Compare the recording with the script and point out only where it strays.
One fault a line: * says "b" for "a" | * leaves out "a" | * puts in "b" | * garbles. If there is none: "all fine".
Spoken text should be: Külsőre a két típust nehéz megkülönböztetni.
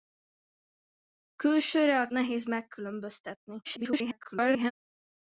* leaves out "két típust"
* garbles